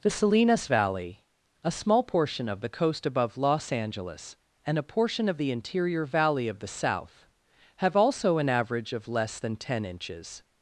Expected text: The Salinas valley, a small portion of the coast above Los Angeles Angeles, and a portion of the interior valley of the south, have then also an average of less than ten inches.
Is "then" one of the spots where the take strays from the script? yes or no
yes